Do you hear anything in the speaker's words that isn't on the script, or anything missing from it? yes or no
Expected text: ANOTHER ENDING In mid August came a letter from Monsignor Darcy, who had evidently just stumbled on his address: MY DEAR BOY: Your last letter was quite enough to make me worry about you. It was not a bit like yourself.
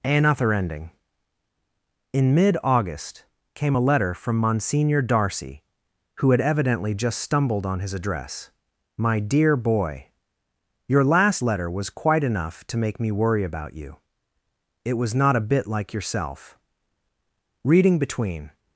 yes